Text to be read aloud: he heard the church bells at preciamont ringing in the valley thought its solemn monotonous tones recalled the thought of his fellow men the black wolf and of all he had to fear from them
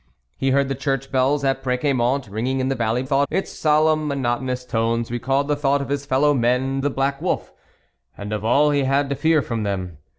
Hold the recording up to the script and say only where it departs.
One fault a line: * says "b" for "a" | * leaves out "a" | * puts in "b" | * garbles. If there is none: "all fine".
all fine